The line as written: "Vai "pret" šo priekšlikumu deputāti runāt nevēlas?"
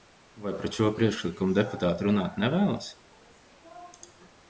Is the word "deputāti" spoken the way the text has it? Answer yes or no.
yes